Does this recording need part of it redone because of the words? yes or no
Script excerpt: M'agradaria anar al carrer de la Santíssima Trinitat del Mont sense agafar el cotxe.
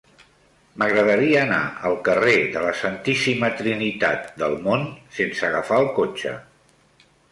no